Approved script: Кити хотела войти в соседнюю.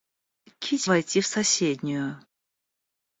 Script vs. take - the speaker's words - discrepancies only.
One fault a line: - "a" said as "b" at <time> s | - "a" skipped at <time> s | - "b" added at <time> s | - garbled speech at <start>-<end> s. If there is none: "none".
- "хотела" skipped at 0.9 s